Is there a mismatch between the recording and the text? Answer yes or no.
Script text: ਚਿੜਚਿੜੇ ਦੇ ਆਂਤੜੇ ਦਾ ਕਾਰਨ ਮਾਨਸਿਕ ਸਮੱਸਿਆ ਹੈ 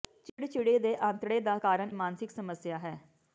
no